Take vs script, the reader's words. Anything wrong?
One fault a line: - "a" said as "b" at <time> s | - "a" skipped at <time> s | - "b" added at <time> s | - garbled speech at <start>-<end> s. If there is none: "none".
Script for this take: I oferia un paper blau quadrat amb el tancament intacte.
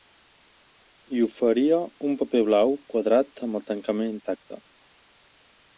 none